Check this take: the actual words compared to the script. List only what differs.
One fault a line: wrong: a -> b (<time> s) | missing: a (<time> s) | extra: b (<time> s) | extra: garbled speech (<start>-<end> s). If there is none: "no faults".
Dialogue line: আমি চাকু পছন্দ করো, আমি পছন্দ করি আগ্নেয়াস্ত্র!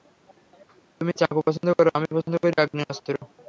wrong: আমি -> তুমি (1.0 s)